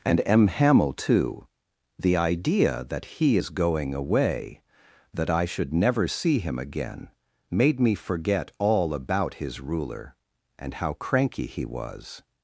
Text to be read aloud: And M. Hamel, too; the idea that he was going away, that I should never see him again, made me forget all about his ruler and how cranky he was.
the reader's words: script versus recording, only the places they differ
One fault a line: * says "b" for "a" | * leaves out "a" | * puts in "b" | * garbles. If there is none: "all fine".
* says "is" for "was"